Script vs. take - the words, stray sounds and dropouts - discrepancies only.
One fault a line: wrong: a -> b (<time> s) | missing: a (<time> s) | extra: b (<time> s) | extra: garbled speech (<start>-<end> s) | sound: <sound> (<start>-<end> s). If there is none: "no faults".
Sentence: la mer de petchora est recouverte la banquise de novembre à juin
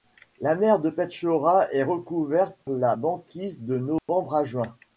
sound: dropout (4.0-4.1 s)